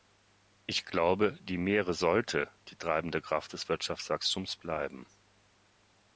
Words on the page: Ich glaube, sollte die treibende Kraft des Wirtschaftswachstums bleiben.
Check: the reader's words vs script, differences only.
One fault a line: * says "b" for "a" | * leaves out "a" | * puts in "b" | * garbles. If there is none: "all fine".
* puts in "die Meere"